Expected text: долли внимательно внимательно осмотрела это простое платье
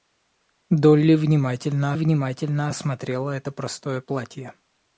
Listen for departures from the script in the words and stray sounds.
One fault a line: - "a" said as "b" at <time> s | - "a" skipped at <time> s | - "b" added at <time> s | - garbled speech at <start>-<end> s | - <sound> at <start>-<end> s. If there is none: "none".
none